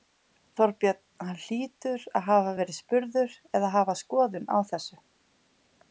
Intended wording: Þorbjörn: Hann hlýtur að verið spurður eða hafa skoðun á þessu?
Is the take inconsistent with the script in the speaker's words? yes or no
yes